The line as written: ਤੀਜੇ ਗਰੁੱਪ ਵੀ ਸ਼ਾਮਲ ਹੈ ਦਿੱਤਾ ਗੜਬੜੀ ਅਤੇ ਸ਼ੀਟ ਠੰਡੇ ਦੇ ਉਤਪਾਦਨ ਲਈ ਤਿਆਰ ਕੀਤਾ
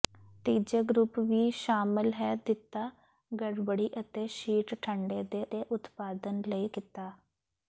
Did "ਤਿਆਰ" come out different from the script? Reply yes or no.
yes